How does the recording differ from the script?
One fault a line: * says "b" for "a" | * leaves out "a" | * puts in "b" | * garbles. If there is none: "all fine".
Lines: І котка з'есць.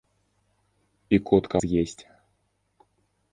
all fine